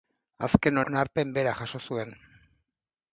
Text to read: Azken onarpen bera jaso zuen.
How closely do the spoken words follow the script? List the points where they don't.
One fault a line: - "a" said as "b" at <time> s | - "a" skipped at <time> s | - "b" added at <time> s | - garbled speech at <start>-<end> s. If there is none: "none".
none